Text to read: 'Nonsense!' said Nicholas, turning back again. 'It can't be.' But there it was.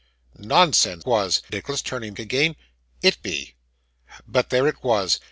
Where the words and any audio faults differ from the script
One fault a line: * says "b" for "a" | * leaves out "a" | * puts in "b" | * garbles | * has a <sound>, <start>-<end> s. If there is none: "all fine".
* says "was" for "said"
* leaves out "back"
* leaves out "can't"